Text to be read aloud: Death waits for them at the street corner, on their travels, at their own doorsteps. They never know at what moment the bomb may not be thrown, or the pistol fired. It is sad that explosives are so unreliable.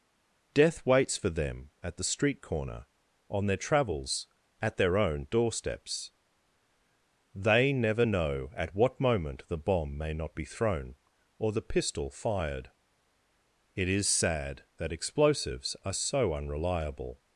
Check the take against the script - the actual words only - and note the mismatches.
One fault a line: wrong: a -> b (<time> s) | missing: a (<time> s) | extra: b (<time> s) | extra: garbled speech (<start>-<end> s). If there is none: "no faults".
no faults